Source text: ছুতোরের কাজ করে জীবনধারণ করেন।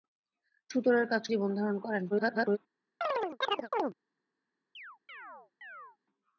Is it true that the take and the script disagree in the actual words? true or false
true